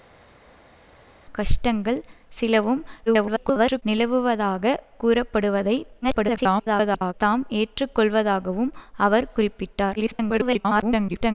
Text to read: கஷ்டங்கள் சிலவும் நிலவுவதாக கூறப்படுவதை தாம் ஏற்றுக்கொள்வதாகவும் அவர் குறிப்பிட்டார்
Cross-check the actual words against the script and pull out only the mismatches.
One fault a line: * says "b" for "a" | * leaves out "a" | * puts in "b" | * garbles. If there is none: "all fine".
* garbles
* garbles
* garbles